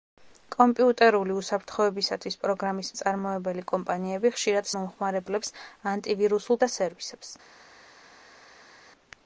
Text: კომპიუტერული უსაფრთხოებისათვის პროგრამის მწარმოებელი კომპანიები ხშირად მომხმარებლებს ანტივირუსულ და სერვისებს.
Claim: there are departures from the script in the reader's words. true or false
false